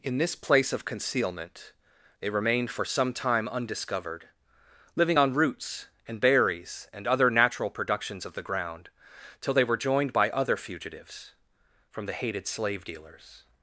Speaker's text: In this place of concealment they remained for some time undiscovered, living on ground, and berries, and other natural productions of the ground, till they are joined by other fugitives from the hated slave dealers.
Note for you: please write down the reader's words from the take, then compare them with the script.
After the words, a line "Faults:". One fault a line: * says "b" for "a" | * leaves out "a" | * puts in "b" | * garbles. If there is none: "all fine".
In this place of concealment they remained for some time undiscovered, living on roots, and berries, and other natural productions of the ground, till they were joined by other fugitives from the hated slave dealers.
Faults:
* says "roots" for "ground"
* says "were" for "are"